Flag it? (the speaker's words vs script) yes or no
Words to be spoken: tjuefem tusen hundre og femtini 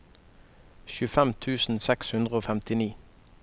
yes